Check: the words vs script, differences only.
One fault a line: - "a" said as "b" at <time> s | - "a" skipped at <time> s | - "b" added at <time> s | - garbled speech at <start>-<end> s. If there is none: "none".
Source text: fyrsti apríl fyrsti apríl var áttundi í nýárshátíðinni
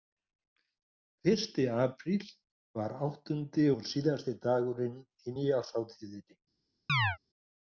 - "fyrsti apríl var áttundi" said as "var áttundi og síðasti dagurinn" at 2.8 s